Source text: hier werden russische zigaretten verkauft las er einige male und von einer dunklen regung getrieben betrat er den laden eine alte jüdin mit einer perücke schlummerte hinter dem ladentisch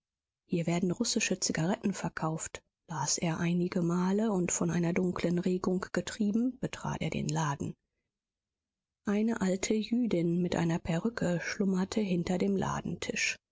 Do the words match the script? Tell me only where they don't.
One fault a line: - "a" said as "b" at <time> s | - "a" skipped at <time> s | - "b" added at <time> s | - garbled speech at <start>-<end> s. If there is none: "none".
none